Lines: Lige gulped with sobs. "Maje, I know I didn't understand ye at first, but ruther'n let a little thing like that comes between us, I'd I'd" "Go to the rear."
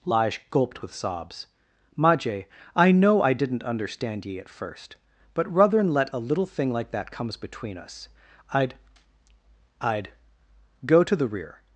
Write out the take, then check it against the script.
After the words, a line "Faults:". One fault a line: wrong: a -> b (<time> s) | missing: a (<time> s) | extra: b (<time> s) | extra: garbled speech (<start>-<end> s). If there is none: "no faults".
Lige gulped with sobs. "Maje, I know I didn't understand ye at first, but ruther'n let a little thing like that comes between us, I'd I'd" "Go to the rear."
Faults:
no faults